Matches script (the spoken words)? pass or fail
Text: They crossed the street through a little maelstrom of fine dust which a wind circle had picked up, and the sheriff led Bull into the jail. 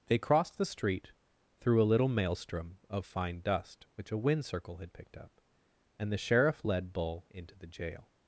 pass